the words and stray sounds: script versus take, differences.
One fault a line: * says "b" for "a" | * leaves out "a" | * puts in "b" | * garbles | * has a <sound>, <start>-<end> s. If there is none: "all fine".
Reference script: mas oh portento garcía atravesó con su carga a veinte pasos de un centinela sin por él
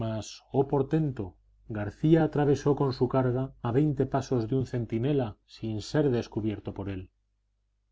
* puts in "ser descubierto"